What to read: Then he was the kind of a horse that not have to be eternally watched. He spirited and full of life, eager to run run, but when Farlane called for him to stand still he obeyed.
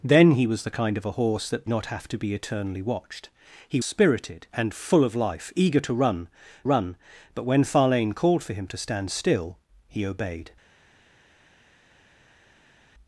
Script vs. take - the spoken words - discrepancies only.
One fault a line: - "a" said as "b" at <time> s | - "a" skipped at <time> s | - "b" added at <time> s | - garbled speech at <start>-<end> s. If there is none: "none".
none